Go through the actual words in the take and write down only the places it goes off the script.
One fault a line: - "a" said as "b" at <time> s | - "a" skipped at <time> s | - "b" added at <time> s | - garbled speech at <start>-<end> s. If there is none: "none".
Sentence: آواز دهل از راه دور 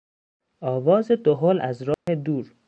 none